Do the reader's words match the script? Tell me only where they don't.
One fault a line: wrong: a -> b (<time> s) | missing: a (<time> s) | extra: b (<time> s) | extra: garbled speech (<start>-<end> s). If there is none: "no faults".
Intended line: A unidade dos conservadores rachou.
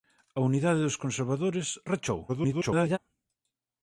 extra: garbled speech (2.3-3.0 s)